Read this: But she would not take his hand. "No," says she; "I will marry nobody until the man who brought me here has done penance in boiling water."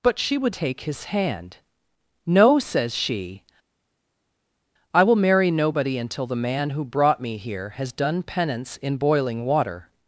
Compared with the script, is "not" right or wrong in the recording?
wrong